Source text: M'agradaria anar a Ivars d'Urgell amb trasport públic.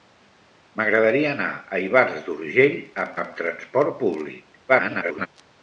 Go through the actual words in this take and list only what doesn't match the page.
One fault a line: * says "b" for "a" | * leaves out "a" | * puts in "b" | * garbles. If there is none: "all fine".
* puts in "amb"
* garbles